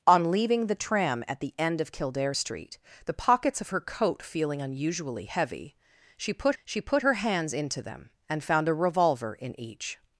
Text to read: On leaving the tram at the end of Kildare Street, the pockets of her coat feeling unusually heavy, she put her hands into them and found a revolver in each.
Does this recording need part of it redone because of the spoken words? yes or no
yes